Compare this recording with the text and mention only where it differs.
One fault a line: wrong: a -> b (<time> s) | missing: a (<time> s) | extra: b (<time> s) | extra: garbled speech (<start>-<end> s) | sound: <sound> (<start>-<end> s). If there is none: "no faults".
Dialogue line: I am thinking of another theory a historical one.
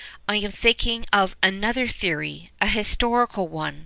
no faults